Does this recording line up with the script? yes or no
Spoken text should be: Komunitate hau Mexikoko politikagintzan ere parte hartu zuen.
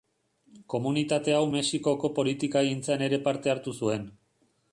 yes